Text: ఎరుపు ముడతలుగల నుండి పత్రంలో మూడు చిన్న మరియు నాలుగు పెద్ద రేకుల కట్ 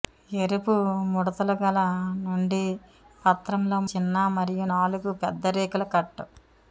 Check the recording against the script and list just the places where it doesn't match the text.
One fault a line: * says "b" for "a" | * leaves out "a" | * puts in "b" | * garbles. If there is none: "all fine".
* leaves out "మూడు"